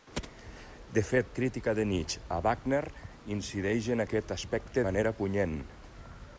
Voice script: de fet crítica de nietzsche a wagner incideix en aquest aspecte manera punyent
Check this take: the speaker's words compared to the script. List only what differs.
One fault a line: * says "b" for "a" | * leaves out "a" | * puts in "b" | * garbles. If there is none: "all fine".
all fine